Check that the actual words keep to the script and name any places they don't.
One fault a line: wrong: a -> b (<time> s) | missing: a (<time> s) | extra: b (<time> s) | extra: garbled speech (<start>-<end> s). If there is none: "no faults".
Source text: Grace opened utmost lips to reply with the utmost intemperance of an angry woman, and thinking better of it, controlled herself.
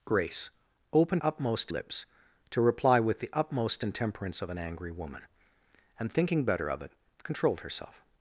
no faults